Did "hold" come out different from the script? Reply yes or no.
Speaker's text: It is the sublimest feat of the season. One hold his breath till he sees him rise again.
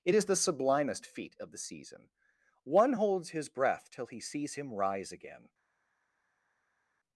yes